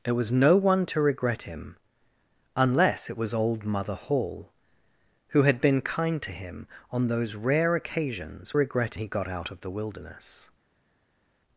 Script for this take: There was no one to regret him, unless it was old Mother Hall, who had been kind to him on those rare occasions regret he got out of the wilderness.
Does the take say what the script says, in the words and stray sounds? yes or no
yes